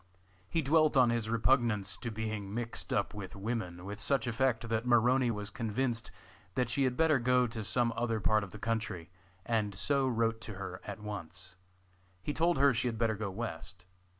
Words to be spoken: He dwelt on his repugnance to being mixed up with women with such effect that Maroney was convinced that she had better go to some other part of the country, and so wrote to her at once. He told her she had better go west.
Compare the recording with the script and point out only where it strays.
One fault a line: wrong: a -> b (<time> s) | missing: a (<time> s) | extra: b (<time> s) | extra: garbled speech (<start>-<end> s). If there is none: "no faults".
no faults